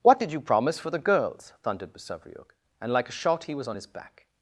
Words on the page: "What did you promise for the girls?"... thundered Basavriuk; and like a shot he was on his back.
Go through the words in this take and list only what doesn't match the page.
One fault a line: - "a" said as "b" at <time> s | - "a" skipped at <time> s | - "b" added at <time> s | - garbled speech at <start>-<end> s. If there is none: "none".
none